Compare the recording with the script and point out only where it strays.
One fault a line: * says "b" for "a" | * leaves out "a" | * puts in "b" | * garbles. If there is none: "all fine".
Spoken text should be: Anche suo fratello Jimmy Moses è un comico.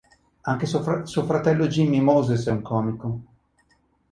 all fine